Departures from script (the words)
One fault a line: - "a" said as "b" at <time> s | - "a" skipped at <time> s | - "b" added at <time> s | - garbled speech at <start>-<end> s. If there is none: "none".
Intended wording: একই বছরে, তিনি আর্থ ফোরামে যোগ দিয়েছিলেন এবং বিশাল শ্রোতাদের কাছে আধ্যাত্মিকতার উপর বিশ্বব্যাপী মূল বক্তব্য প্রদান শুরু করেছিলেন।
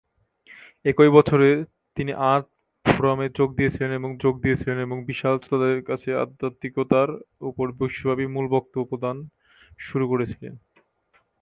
- "যোগ দিয়েছিলেন এবং" added at 4.2 s